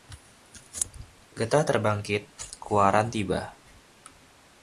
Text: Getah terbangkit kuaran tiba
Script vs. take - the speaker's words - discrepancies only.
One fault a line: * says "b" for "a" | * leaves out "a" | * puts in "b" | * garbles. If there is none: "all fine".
all fine